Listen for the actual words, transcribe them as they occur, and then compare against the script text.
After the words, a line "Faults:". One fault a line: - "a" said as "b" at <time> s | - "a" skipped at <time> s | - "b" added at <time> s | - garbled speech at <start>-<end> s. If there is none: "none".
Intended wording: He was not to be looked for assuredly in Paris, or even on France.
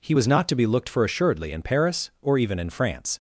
He was not to be looked for assuredly in Paris, or even in France.
Faults:
- "on" said as "in" at 2.6 s